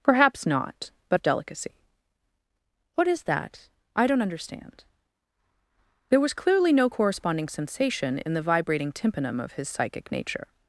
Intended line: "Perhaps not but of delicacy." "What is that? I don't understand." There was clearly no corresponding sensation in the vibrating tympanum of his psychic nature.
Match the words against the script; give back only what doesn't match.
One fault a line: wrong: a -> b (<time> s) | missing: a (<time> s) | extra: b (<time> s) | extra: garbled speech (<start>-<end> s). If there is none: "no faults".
no faults